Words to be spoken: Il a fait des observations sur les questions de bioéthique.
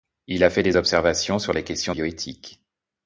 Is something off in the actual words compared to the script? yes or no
yes